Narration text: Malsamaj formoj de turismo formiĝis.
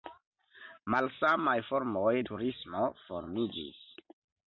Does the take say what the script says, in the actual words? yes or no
no